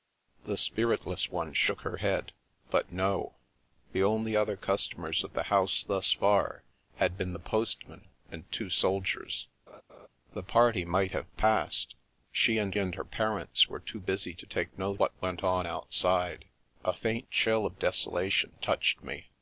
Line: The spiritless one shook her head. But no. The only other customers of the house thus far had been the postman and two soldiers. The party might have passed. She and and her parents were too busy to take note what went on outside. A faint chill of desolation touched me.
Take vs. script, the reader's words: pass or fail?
pass